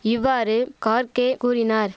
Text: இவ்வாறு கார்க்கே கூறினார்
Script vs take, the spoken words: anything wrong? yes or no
no